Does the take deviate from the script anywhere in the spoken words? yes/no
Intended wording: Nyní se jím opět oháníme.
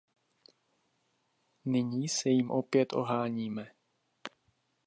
no